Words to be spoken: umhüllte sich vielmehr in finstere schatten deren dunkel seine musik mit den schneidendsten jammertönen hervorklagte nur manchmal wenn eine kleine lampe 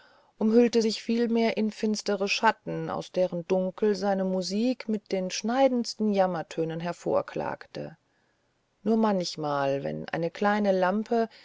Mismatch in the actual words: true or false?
true